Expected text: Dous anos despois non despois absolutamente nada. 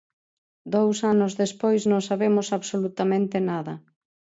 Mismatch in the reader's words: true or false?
true